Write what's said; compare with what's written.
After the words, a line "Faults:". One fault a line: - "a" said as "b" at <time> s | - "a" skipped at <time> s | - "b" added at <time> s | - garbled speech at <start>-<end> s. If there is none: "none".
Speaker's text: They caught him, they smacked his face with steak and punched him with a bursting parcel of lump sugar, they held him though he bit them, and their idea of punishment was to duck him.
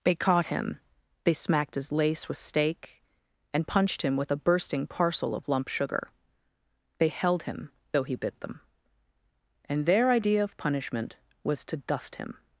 They caught him, they smacked his lace with steak and punched him with a bursting parcel of lump sugar, they held him though he bit them, and their idea of punishment was to dust him.
Faults:
- "face" said as "lace" at 1.9 s
- "duck" said as "dust" at 11.8 s